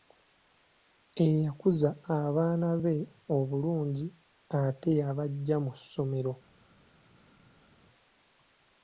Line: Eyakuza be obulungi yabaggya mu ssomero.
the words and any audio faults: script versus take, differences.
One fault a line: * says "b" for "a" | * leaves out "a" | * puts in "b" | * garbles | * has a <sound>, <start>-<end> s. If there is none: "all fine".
* puts in "abaana"
* puts in "ate"